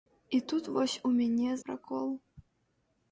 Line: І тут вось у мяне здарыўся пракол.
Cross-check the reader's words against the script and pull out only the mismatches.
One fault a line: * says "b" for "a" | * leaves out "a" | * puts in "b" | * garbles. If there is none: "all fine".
* leaves out "здарыўся"